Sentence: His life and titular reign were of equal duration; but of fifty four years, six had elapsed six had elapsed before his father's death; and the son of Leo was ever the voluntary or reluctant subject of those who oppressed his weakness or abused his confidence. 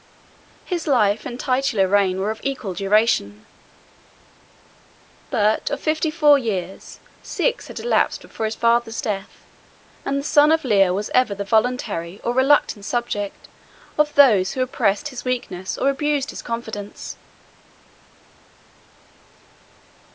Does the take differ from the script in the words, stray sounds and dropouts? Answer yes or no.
yes